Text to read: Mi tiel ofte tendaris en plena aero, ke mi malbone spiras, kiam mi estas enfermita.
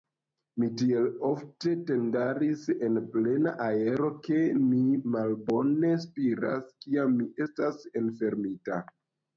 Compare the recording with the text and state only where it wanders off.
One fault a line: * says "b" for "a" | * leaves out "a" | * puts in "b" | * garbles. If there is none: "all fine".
all fine